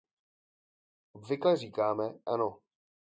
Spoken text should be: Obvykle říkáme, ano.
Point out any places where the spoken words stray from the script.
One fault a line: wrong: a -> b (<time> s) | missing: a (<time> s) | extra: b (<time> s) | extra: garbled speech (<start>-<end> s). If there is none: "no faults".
no faults